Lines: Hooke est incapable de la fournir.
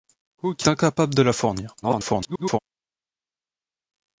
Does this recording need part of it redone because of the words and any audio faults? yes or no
yes